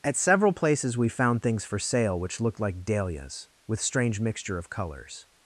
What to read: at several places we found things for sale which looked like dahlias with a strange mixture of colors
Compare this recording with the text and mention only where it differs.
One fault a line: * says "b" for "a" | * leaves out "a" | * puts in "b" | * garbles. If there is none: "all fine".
* leaves out "a"